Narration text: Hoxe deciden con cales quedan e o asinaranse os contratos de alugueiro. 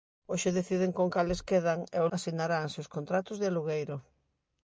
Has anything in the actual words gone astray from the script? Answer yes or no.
no